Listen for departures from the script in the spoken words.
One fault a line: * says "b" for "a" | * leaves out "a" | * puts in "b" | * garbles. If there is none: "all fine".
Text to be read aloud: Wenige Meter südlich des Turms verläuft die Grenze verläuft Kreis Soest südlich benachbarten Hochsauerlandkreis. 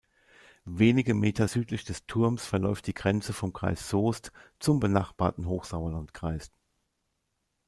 * says "vom" for "verläuft"
* says "zum" for "südlich"